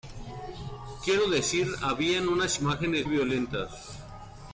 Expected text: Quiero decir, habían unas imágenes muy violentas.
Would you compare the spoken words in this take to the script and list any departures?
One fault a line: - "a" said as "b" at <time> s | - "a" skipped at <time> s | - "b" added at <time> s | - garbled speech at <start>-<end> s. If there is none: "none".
- "muy" skipped at 3.1 s